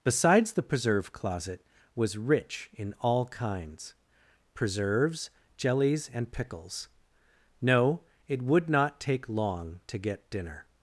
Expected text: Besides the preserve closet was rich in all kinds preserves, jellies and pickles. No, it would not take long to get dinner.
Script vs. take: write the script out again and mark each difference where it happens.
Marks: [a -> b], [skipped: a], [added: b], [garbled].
Besides the preserve closet was rich in all kinds preserves, jellies and pickles. No, it would not take long to get dinner.